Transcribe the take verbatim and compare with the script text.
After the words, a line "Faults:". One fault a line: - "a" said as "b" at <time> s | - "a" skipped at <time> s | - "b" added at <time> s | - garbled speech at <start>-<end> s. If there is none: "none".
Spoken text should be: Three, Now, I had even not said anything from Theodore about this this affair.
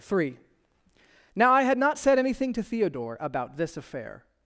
Three, Now, I had not said anything to Theodore about this affair.
Faults:
- "even" skipped at 1.8 s
- "from" said as "to" at 2.5 s
- "this" skipped at 3.8 s